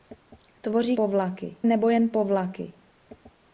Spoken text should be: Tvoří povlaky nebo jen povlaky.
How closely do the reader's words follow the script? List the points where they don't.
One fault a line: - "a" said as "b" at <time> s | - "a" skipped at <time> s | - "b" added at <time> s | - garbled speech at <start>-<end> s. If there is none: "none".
none